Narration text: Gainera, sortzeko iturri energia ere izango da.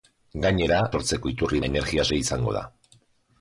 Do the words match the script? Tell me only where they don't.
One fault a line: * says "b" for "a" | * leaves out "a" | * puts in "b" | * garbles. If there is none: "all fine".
all fine